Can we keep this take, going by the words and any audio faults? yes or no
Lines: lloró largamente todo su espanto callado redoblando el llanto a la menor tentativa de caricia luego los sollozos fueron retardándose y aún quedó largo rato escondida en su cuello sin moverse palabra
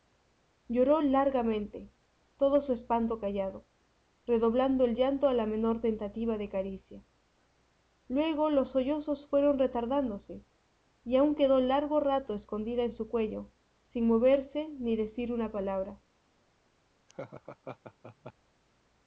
no